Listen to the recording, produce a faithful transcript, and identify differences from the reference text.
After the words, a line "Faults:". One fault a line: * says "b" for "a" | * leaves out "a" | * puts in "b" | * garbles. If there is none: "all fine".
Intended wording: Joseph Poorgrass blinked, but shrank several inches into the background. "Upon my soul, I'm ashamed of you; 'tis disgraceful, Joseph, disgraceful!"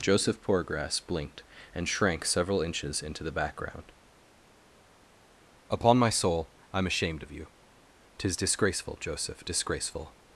Joseph Poorgrass blinked, and shrank several inches into the background. "Upon my soul, I'm ashamed of you; 'tis disgraceful, Joseph, disgraceful!"
Faults:
* says "and" for "but"